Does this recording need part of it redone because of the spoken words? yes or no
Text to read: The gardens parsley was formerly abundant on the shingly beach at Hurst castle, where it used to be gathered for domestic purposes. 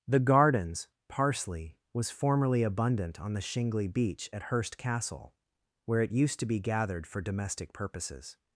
no